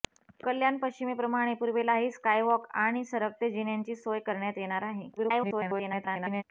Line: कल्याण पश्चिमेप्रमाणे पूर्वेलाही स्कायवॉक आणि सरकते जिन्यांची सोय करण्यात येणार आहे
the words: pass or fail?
fail